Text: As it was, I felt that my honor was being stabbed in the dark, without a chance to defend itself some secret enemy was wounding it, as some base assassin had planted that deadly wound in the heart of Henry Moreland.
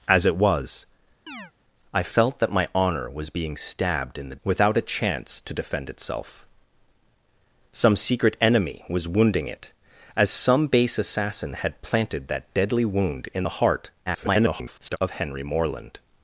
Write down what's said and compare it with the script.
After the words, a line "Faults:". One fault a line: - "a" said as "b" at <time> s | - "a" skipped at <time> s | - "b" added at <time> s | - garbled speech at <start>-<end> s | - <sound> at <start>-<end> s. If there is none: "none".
As it was, I felt that my honor was being stabbed in the without a chance to defend itself some secret enemy was wounding it, as some base assassin had planted that deadly wound in the heart [garbled] of Henry Moreland.
Faults:
- chirp at 1.3-1.5 s
- "dark" skipped at 4.4 s
- garbled speech at 14.1-15.0 s